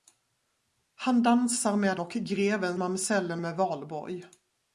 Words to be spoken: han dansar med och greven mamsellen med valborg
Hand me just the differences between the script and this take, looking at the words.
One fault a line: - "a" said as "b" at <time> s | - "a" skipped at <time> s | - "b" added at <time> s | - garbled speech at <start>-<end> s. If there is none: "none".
none